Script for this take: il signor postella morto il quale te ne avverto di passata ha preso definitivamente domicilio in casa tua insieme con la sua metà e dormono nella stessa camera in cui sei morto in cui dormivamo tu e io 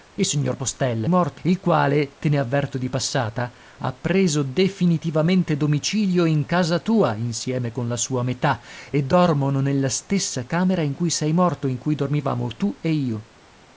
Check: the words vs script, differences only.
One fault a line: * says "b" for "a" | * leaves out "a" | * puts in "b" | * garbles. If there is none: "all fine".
all fine